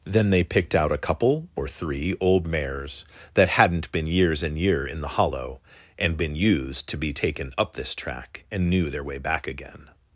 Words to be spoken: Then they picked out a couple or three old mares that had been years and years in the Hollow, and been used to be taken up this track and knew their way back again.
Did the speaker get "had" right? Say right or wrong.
wrong